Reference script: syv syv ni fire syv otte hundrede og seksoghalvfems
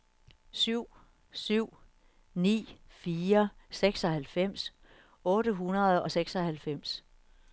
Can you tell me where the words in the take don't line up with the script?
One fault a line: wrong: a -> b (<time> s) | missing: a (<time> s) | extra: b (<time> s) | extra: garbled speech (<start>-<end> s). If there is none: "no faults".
wrong: syv -> seksoghalvfems (3.7 s)